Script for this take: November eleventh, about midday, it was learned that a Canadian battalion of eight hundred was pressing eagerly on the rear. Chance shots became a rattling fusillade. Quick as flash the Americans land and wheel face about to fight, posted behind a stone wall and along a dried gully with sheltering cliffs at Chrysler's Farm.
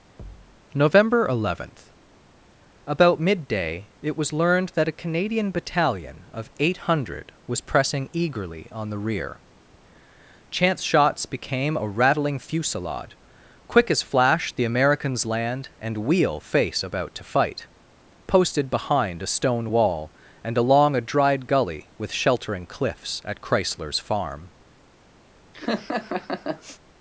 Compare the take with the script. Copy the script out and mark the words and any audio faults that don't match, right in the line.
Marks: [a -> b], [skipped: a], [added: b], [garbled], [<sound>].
[thud] November eleventh, about midday, it was learned that a Canadian battalion of eight hundred was pressing eagerly on the rear. Chance shots became a rattling fusillade. Quick as flash the Americans land and wheel face about to fight, posted behind a stone wall and along a dried gully with sheltering cliffs at Chrysler's Farm. [laugh]